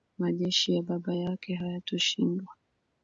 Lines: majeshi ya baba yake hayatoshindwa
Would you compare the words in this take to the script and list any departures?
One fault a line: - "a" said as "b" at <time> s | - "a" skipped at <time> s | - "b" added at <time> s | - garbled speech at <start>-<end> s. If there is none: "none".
none